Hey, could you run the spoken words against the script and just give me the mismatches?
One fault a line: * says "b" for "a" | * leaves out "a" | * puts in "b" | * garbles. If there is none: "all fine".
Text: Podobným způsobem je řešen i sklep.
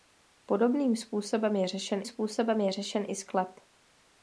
* puts in "způsobem je řešen"